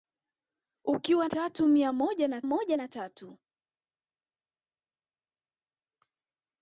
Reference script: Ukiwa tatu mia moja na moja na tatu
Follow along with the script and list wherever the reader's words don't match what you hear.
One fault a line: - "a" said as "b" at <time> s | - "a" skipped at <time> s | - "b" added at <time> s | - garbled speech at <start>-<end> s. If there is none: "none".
none